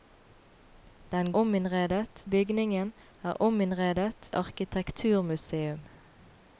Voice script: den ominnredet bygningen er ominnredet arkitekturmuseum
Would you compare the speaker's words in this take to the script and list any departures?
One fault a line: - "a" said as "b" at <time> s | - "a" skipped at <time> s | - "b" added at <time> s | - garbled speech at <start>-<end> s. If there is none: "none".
none